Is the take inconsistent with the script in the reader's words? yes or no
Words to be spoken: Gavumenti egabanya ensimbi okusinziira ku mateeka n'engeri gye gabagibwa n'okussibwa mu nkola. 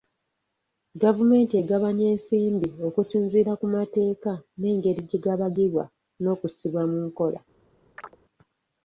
no